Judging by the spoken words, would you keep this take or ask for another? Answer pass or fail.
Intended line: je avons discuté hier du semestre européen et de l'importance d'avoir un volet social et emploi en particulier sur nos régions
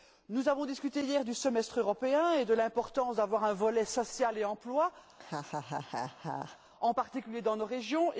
fail